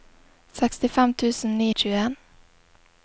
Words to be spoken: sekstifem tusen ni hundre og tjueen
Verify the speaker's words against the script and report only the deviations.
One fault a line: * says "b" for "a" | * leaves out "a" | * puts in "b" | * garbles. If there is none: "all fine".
* leaves out "hundre"